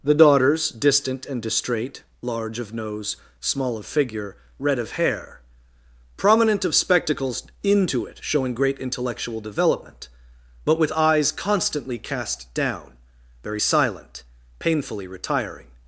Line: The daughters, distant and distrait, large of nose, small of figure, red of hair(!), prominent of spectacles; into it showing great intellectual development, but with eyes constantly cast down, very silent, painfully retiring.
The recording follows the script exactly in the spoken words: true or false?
true